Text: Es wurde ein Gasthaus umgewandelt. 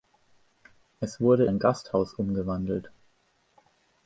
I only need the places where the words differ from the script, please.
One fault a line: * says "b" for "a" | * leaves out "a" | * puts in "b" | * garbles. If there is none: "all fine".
all fine